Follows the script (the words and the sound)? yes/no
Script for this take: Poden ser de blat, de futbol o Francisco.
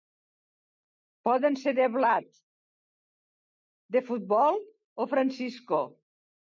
yes